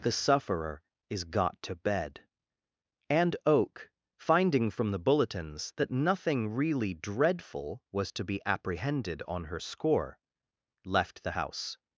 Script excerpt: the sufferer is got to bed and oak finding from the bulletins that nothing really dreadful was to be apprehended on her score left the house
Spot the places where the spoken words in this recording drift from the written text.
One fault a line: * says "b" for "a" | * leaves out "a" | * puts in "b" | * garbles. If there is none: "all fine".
all fine